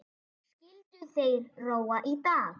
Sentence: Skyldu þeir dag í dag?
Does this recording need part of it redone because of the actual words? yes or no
yes